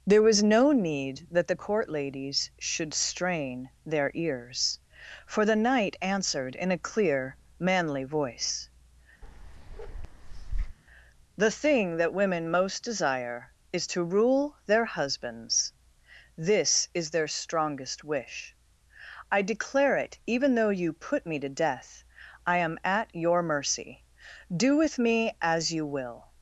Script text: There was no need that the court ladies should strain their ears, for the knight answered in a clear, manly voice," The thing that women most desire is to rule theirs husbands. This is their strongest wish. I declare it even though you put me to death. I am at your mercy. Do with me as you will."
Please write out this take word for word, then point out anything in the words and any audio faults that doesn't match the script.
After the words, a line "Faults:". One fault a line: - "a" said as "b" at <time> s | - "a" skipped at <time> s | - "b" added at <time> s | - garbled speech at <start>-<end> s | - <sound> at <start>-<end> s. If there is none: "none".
There was no need that the court ladies should strain their ears, for the knight answered in a clear, manly voice," The thing that women most desire is to rule their husbands. This is their strongest wish. I declare it even though you put me to death. I am at your mercy. Do with me as you will."
Faults:
- bark at 9.2-10.8 s
- "theirs" said as "their" at 14.7 s